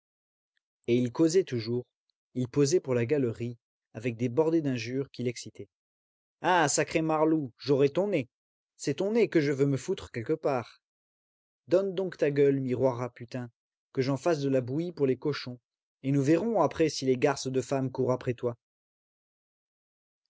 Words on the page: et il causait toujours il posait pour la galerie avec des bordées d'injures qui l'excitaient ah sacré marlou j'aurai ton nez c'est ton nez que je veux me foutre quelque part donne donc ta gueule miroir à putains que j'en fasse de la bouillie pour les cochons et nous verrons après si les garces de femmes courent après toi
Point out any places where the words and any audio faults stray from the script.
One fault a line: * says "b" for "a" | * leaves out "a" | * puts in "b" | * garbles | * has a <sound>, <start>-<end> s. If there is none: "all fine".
all fine